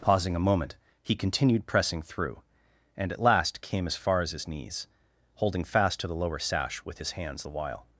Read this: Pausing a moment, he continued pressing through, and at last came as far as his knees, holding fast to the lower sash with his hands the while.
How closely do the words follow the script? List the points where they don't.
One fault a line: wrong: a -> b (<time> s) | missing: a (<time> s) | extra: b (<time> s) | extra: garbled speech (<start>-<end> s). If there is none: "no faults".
no faults